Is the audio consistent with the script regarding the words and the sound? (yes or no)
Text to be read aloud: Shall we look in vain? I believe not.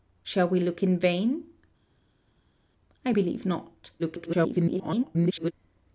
no